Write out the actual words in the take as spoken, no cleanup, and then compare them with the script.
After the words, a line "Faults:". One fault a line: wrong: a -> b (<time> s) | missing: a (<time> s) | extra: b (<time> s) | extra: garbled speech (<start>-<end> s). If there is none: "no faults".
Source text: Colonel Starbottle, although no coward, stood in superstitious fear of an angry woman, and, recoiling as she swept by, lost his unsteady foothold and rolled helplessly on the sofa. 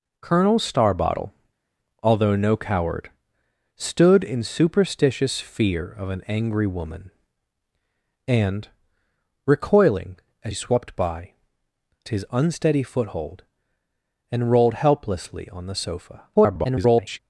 Colonel Starbottle, although no coward, stood in superstitious fear of an angry woman, and, recoiling as swept by, his unsteady foothold and rolled helplessly on the sofa. [garbled]
Faults:
missing: she (10.5 s)
missing: lost (11.3 s)
extra: garbled speech (16.3-17.2 s)